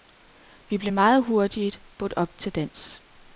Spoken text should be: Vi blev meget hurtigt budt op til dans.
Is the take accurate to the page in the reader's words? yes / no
yes